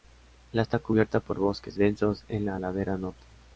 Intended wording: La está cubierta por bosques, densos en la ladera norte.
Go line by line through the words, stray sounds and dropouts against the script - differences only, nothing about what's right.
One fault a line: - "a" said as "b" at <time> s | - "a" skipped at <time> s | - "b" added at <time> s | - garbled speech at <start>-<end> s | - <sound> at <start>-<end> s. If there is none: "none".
none